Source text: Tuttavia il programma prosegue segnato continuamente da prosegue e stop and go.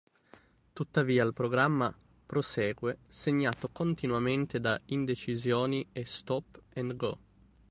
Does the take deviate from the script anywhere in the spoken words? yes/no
yes